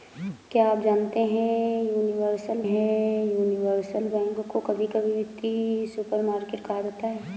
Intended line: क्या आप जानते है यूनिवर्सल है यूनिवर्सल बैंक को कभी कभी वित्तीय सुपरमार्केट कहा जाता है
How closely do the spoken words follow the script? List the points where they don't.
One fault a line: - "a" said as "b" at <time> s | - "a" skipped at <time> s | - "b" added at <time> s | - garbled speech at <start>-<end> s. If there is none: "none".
none